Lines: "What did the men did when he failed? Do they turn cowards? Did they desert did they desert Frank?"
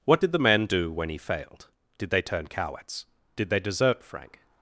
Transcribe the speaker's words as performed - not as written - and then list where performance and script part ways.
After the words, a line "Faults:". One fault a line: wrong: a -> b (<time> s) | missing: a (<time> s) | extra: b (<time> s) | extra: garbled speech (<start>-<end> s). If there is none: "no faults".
"What did the men do when he failed? Did they turn cowards? Did they desert Frank?"
Faults:
wrong: did -> do (0.6 s)
wrong: Do -> Did (2.0 s)
missing: did they desert (4.0 s)